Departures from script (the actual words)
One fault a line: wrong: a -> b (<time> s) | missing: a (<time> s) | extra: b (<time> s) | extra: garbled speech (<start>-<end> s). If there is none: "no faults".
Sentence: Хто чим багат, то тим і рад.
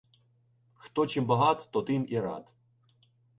no faults